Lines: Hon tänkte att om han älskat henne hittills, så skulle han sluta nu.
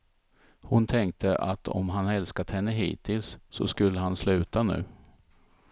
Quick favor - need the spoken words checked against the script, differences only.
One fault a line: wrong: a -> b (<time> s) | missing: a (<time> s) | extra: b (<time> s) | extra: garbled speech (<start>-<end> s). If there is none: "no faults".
no faults